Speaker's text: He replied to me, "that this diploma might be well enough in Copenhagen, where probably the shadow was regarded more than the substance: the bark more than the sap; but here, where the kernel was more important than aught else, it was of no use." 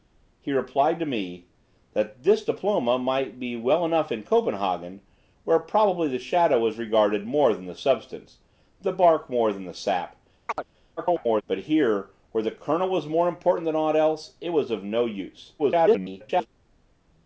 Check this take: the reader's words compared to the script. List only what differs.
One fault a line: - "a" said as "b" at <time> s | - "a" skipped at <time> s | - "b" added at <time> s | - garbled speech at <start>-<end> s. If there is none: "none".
- garbled speech at 11.0-11.4 s
- garbled speech at 15.6-16.5 s